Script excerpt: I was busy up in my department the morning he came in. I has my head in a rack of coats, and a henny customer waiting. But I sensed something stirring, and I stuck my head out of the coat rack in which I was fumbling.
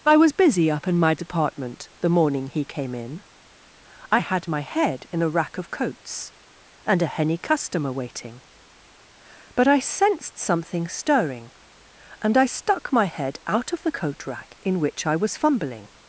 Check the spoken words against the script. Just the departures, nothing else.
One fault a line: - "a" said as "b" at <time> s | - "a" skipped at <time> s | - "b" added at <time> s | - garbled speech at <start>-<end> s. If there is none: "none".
- "has" said as "had" at 4.2 s